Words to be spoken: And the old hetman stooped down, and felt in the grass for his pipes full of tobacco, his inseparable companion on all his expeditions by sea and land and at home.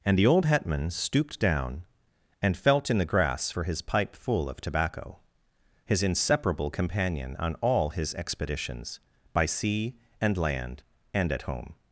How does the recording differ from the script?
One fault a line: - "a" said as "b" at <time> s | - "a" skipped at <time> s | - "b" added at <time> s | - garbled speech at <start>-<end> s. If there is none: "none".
- "pipes" said as "pipe" at 3.8 s